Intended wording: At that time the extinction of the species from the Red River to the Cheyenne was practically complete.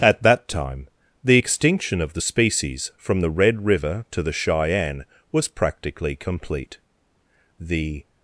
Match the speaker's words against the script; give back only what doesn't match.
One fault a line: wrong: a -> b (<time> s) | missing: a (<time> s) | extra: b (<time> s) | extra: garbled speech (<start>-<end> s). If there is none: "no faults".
extra: The (7.6 s)